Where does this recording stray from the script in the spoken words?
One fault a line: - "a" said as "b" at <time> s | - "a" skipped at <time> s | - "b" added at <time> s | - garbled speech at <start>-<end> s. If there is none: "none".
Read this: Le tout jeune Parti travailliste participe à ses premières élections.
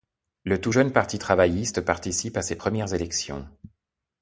none